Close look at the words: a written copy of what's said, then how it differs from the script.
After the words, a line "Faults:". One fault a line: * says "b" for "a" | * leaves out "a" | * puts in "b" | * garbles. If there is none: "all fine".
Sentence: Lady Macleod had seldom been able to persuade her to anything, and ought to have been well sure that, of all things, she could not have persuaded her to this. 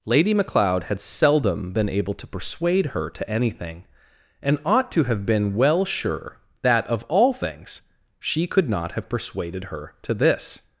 Lady Macleod had seldom been able to persuade her to anything, and ought to have been well sure that, of all things, she could not have persuaded her to this.
Faults:
all fine